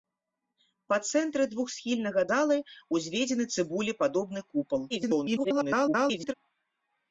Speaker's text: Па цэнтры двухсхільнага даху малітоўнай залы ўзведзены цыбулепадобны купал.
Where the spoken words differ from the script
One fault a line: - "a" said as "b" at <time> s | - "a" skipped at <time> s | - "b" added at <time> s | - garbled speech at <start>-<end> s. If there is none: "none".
- "даху малітоўнай" skipped at 2.2 s
- garbled speech at 4.9-6.3 s